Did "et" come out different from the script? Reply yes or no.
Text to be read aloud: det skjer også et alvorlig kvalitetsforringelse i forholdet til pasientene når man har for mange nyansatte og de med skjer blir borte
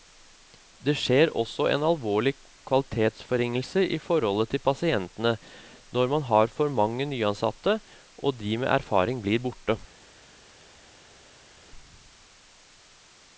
yes